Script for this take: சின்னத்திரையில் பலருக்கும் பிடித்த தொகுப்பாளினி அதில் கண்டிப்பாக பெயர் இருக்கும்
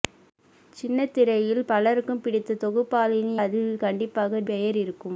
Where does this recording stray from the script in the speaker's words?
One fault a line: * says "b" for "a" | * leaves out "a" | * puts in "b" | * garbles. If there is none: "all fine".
all fine